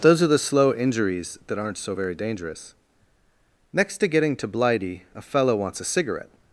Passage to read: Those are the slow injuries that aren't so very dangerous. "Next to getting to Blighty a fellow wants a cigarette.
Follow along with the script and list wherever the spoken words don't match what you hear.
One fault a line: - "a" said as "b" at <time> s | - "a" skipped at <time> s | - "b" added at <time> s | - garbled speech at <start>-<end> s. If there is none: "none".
none